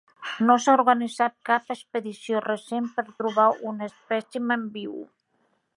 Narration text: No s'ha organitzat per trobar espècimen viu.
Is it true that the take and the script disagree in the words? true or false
true